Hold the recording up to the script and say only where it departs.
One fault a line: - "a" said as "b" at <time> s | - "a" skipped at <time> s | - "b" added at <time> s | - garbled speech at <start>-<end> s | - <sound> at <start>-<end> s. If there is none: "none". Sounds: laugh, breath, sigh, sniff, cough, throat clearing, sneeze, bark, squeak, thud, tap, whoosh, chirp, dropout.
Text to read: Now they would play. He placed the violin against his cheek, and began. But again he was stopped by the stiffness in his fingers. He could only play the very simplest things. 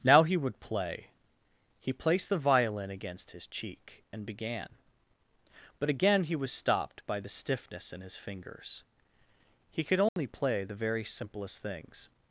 - "they" said as "he" at 0.2 s
- dropout at 10.1-10.2 s